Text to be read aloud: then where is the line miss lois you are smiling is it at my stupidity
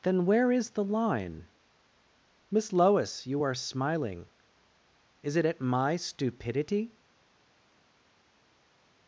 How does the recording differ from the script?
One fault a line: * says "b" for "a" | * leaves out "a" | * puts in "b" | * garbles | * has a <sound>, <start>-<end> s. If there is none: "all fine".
all fine